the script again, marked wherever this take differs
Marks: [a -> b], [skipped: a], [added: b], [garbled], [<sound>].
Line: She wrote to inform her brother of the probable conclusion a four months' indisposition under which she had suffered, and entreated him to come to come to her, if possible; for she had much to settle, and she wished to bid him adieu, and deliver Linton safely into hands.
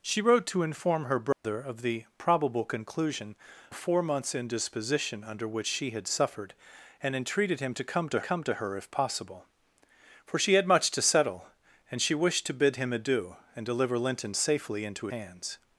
She wrote to inform her brother [dropout] of the probable conclusion a four months' indisposition under which she had suffered, and entreated him to come to come to her, if possible; for she had much to settle, and she wished to bid him adieu, and deliver Linton safely into hands.